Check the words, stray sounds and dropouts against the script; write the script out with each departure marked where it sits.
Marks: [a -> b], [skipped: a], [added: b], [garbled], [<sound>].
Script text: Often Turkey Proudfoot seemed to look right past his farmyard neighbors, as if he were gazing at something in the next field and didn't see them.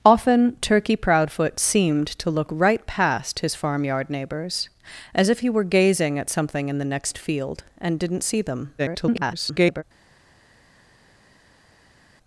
Often Turkey Proudfoot seemed to look right past his farmyard neighbors, as if he were gazing at something in the next field and didn't see them. [garbled]